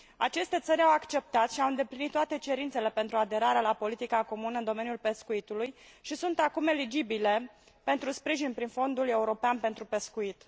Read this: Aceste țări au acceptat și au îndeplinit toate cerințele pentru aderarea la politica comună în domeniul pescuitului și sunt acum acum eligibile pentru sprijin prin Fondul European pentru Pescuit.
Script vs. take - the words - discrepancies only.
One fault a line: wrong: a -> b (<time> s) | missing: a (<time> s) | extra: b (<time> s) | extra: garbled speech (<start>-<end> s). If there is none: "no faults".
missing: acum (6.7 s)